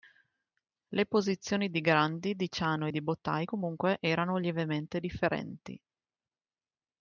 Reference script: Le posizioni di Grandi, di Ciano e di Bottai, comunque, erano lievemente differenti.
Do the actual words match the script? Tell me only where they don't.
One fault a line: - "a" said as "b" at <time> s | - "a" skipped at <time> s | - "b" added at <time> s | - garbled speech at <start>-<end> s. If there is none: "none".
none